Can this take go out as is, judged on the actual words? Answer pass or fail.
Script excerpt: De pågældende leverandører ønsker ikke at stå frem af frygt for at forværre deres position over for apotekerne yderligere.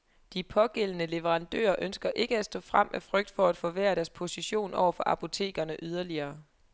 pass